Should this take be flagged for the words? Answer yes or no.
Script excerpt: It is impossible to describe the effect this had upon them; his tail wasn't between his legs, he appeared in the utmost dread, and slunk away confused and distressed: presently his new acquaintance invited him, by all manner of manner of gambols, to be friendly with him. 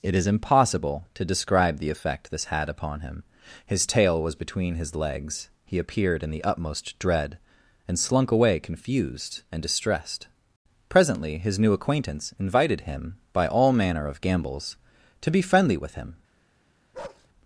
yes